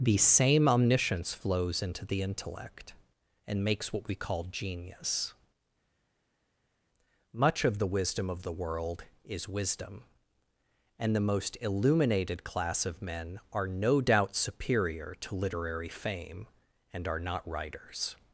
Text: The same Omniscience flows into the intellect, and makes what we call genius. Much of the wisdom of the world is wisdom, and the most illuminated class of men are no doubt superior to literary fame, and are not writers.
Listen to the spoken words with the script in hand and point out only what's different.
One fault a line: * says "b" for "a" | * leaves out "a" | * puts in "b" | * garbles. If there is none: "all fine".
all fine